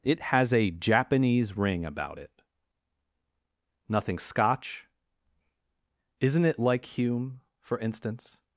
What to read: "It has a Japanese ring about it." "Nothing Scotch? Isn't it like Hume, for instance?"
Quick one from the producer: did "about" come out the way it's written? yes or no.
yes